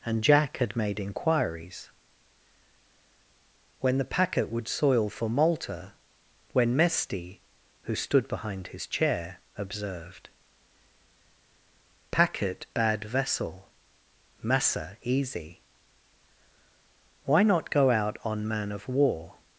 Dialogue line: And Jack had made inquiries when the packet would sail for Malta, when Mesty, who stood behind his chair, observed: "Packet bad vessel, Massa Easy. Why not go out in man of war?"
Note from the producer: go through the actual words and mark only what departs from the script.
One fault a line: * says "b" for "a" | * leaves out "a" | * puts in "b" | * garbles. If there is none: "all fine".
* says "soil" for "sail"
* says "on" for "in"